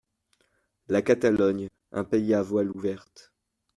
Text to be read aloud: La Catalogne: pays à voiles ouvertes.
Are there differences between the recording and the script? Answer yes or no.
yes